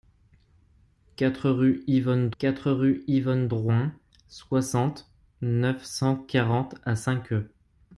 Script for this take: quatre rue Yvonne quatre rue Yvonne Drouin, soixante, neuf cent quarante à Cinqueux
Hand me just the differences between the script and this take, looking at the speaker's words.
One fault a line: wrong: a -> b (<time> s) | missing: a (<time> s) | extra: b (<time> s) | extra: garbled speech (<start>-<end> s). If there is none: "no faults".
no faults